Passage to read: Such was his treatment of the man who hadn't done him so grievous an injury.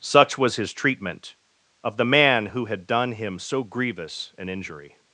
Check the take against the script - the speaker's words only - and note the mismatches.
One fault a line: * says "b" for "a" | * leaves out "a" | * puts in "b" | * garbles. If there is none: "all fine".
* says "had" for "hadn't"